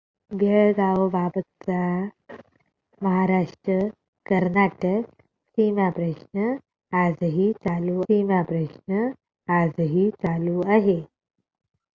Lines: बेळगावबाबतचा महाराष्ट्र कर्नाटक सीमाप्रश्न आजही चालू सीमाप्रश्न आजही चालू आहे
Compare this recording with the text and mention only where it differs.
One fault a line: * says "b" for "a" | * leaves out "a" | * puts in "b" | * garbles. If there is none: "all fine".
all fine